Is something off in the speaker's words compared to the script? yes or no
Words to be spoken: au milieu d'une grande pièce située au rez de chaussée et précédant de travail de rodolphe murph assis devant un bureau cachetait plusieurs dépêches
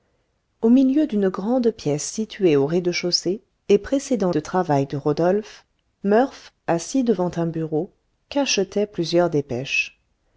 no